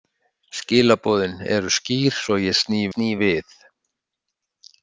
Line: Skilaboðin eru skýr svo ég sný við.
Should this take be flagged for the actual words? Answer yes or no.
yes